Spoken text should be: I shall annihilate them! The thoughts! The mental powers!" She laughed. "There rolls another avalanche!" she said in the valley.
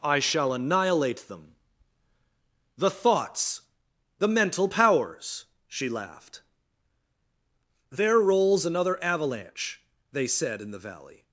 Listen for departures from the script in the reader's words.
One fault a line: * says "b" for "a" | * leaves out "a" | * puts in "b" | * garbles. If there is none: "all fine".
* says "they" for "she"